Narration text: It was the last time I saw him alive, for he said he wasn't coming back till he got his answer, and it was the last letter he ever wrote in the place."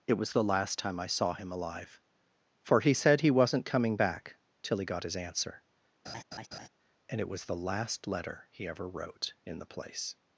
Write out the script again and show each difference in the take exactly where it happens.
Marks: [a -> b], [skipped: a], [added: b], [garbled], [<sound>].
It was the last time I saw him alive, for he said he wasn't coming back till he got his answer, [laugh] and it was the last letter he ever wrote in the place."